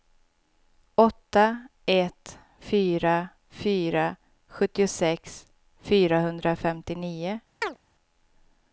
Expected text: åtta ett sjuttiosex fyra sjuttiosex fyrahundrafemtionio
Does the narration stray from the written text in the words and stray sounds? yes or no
yes